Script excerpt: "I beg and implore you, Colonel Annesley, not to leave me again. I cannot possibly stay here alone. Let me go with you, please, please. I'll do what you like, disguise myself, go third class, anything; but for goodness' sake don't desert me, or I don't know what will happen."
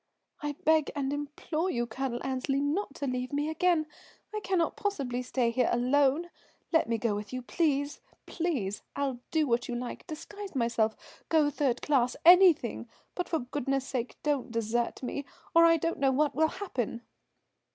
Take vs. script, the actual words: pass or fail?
pass